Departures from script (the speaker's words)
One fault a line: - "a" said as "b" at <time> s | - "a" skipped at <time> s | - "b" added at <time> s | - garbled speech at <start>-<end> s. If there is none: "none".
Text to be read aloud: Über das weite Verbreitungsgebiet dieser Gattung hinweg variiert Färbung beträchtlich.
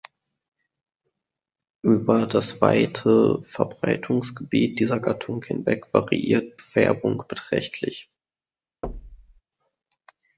none